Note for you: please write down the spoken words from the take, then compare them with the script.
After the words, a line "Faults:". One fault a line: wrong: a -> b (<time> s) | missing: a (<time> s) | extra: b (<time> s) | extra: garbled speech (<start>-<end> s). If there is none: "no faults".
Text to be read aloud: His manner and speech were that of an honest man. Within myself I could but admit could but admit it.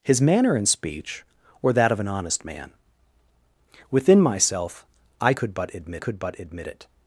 His manner and speech were that of an honest man. Within myself I could but admit could but admit it.
Faults:
no faults